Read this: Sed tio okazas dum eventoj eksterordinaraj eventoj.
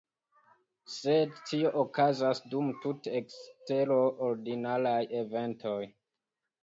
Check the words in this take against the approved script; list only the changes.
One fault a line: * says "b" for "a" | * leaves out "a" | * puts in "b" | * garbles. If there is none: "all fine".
* says "tute" for "eventoj"